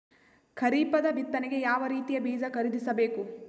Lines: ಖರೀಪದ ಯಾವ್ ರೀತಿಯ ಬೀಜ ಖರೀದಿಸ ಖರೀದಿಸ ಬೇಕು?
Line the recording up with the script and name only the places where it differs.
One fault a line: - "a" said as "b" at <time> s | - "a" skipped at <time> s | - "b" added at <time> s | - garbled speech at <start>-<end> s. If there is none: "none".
- "ಬಿತ್ತನೆಗೆ" added at 1.1 s
- "ಖರೀದಿಸ" skipped at 2.9 s